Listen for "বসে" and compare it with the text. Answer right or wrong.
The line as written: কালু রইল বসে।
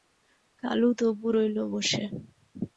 right